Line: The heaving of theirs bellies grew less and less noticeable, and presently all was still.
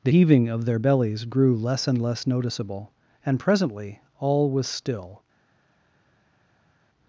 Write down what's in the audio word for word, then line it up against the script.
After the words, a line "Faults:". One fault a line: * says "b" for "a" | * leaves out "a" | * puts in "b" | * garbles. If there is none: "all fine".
The heaving of their bellies grew less and less noticeable, and presently all was still.
Faults:
* says "their" for "theirs"